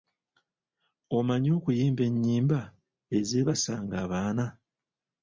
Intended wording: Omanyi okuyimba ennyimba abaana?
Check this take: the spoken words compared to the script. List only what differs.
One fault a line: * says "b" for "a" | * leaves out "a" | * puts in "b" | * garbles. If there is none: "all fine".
* puts in "ezeebasanga"